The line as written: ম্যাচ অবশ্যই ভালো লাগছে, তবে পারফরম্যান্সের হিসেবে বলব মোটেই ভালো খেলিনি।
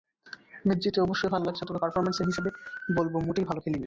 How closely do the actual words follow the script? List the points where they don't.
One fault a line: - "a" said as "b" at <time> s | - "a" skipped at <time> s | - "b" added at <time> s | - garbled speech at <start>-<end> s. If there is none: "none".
- "জিতে" added at 0.8 s